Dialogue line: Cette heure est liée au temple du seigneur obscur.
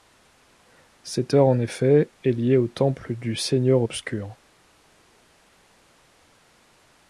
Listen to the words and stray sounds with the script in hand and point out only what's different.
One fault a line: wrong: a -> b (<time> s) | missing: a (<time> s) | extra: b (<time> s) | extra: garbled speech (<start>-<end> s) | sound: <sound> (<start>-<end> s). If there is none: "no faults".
extra: en effet (1.4 s)